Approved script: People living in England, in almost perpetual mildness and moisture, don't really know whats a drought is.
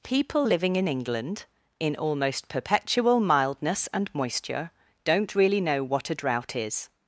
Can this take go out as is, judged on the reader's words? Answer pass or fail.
fail